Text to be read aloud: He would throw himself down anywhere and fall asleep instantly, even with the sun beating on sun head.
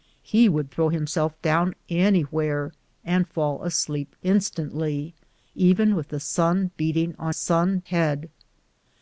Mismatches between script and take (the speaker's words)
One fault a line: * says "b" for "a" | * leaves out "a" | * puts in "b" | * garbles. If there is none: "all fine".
all fine